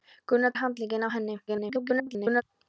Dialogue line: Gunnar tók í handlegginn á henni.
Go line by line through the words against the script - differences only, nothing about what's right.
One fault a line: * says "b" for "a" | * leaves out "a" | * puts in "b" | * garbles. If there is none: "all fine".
* leaves out "tók"
* garbles